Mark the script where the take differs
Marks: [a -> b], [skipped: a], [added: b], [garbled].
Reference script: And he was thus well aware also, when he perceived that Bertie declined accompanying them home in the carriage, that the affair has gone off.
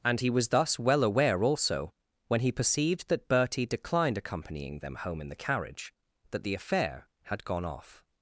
And he was thus well aware also, when he perceived that Bertie declined accompanying them home in the carriage, that the affair [has -> had] gone off.